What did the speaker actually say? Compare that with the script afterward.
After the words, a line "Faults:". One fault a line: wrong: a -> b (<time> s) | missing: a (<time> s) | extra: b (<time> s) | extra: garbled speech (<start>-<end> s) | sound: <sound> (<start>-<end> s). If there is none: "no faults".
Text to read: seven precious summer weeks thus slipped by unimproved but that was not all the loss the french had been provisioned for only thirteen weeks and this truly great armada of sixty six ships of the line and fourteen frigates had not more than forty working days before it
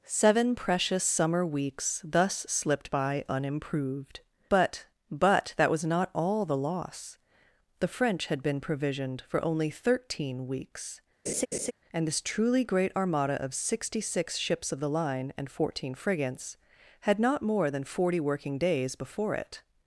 seven precious summer weeks thus slipped by unimproved but but that was not all the loss the french had been provisioned for only thirteen weeks and this truly great armada of sixty six ships of the line and fourteen frigates had not more than forty working days before it
Faults:
extra: but (5.1 s)
sound: laugh (11.3-11.7 s)